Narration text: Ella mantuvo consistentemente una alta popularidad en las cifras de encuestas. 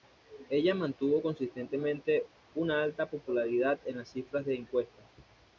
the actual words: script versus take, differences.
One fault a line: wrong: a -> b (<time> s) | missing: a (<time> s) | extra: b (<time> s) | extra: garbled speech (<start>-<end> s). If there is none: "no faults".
no faults